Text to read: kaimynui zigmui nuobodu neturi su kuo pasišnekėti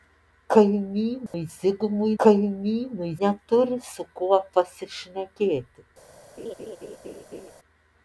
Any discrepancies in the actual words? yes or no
yes